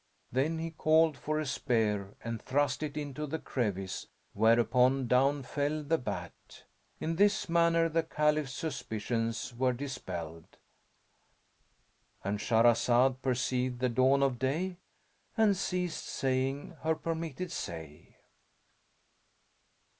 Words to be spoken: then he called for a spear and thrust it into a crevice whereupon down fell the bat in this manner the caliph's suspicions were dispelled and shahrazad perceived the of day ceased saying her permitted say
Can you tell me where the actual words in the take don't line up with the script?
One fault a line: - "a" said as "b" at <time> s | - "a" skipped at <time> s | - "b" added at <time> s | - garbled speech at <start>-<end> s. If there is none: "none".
- "a" said as "the" at 3.3 s
- "dawn" added at 13.9 s
- "and" added at 15.4 s